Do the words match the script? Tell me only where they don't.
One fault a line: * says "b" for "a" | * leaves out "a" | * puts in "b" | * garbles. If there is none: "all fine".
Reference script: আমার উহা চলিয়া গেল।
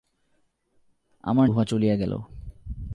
all fine